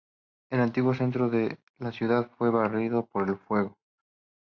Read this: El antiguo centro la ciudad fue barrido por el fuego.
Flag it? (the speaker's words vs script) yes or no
yes